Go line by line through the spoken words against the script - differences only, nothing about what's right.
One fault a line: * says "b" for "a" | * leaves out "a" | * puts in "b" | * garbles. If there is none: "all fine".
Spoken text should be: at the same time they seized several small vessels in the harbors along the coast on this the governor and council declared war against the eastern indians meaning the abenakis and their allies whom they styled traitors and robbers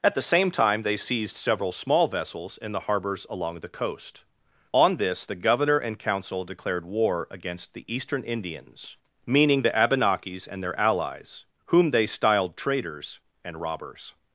all fine